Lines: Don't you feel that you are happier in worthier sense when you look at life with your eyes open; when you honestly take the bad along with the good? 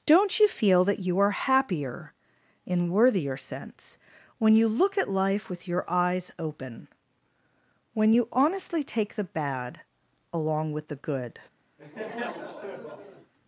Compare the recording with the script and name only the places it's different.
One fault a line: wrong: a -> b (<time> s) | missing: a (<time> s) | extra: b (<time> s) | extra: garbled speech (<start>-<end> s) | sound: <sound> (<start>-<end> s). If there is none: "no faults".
sound: laugh (11.8-13.3 s)